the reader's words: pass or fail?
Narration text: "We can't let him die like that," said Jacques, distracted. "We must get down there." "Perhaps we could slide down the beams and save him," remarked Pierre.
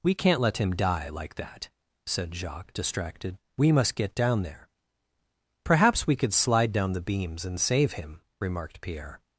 pass